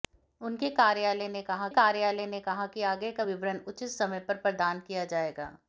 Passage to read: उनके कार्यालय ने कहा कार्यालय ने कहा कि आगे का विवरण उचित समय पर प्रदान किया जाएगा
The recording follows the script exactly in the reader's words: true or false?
true